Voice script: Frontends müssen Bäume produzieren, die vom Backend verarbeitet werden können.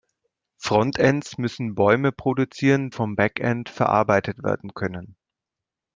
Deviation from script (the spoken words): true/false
true